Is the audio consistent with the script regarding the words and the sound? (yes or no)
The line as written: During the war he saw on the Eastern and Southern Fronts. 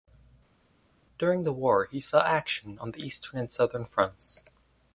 no